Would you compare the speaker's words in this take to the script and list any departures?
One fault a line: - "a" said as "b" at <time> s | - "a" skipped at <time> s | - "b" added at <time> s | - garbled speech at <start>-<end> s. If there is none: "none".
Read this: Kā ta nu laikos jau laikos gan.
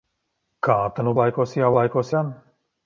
none